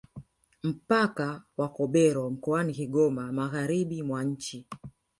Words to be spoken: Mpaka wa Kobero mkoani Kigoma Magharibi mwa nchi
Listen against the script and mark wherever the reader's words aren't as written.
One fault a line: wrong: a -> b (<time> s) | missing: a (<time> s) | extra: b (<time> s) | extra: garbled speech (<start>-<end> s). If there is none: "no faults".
no faults